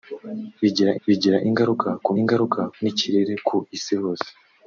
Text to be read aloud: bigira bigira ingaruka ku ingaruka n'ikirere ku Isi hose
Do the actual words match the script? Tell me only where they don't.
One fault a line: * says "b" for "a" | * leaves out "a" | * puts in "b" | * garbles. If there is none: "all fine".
all fine